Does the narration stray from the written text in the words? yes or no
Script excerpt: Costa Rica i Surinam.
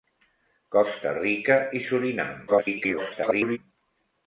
yes